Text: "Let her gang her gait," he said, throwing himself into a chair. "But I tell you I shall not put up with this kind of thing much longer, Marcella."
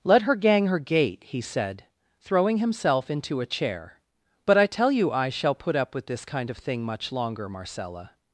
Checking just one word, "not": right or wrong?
wrong